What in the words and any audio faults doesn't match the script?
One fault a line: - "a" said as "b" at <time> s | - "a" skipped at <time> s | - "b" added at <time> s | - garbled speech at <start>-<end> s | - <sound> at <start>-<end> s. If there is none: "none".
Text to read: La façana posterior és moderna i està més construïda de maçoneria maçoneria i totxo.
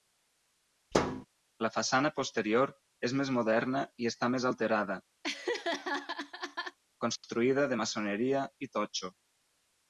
- thud at 0.9-1.3 s
- "més" added at 3.2 s
- "alterada" added at 4.5 s
- laugh at 5.2-6.8 s
- "maçoneria" skipped at 8.4 s